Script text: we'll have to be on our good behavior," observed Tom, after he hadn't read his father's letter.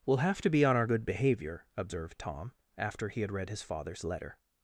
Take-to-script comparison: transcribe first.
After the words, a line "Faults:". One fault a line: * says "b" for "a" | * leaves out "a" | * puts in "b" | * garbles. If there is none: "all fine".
we'll have to be on our good behavior," observed Tom, after he had read his father's letter.
Faults:
* says "had" for "hadn't"